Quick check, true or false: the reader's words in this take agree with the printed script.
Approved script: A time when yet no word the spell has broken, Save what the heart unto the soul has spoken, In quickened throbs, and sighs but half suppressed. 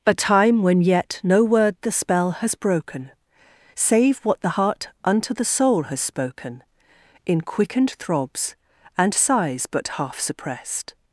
true